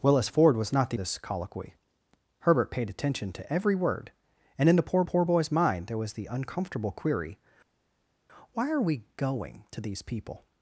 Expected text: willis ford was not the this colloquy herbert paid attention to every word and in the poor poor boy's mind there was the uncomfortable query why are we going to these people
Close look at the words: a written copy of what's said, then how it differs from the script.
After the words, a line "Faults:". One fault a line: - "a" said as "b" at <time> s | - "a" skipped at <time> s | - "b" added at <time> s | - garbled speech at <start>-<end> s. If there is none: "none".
willis ford was not the this colloquy herbert paid attention to every word and in the poor poor boy's mind there was the uncomfortable query why are we going to these people
Faults:
none